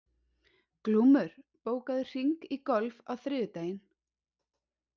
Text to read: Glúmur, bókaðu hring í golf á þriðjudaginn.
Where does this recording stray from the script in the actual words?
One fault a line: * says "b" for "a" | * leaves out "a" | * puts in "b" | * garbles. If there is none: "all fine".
all fine